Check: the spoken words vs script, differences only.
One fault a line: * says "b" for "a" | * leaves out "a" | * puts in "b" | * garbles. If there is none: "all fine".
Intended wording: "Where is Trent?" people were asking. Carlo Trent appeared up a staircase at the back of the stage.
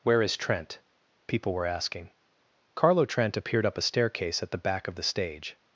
all fine